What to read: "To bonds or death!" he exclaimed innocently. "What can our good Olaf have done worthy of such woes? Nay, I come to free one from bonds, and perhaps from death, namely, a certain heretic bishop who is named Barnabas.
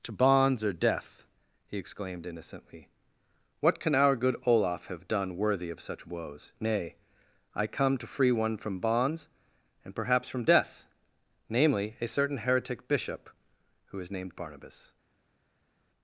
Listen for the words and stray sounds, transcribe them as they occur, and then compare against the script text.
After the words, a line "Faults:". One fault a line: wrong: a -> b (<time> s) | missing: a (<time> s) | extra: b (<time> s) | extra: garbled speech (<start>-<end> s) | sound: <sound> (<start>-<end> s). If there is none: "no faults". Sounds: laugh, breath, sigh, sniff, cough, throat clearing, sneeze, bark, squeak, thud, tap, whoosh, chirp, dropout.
"To bonds or death!" he exclaimed innocently. "What can our good Olaf have done worthy of such woes? Nay, I come to free one from bonds, and perhaps from death, namely, a certain heretic bishop who is named Barnabas.
Faults:
no faults